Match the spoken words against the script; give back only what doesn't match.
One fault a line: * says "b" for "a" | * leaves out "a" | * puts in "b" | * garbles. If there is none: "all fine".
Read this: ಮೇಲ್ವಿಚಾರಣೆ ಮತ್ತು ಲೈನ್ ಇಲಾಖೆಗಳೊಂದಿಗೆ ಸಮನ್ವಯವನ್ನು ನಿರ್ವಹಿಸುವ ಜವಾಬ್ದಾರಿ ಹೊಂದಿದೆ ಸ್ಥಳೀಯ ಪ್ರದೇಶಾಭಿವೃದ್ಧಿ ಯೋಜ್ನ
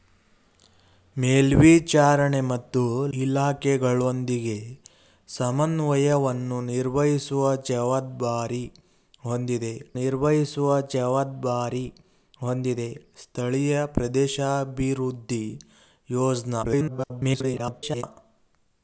* leaves out "ಲೈನ್"
* puts in "ನಿರ್ವಹಿಸುವ ಜವಾಬ್ದಾರಿ ಹೊಂದಿದೆ"
* garbles